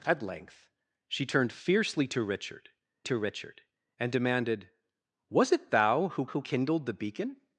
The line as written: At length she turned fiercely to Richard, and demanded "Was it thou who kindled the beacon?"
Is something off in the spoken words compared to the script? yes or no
yes